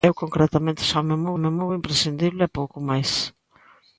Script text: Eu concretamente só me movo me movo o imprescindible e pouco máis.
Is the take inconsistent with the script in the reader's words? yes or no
no